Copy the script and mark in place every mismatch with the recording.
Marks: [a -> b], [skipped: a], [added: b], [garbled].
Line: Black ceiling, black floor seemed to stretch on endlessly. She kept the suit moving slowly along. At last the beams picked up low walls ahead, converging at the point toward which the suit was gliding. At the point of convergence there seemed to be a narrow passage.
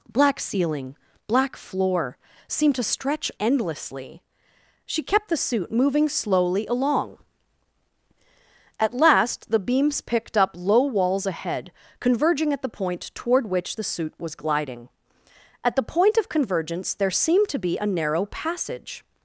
Black ceiling, black floor seemed to stretch [skipped: on] endlessly. She kept the suit moving slowly along. At last the beams picked up low walls ahead, converging at the point toward which the suit was gliding. At the point of convergence there seemed to be a narrow passage.